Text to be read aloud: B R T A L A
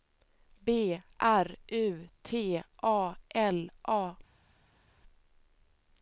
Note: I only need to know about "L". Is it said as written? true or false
true